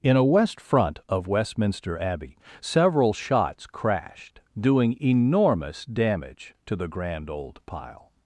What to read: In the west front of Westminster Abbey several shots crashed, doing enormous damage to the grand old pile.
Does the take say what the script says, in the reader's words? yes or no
no